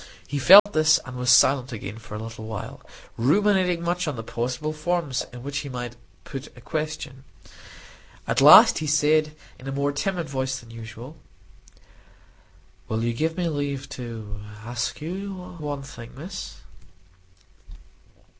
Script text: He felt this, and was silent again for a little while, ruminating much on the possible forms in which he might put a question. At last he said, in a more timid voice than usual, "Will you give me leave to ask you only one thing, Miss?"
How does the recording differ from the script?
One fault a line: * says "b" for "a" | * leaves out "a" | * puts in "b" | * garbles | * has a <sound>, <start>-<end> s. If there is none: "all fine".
* has a dropout, 0.6-0.7 s
* leaves out "only"